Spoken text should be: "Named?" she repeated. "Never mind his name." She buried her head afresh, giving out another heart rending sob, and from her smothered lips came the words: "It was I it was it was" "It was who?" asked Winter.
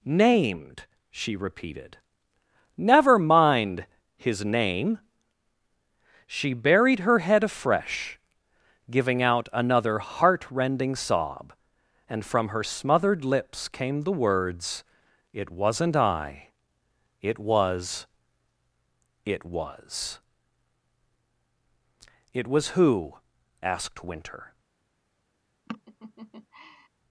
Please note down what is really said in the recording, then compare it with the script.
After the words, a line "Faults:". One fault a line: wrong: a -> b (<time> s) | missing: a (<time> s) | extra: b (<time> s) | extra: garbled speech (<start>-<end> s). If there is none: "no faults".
"Named?" she repeated. "Never mind his name." She buried her head afresh, giving out another heart rending sob, and from her smothered lips came the words: "It wasn't I it was it was" "It was who?" asked Winter.
Faults:
wrong: was -> wasn't (15.5 s)